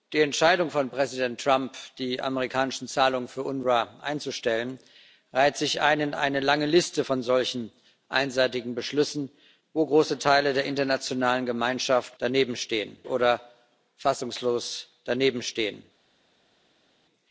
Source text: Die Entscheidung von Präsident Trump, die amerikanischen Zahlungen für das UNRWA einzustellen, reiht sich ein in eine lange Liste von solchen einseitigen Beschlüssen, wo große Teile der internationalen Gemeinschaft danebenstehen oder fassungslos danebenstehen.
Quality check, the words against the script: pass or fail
pass